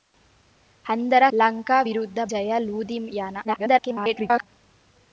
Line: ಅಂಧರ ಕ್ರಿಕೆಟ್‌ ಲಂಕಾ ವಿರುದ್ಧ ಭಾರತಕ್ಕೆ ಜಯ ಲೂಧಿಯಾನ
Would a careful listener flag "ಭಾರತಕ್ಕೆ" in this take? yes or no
yes